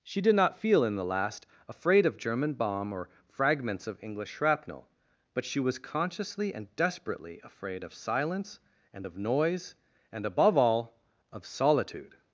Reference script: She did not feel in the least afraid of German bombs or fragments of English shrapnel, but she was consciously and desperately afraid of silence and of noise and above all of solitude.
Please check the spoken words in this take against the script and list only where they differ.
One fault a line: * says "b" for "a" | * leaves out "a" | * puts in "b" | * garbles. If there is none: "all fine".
* says "last" for "least"
* says "bomb" for "bombs"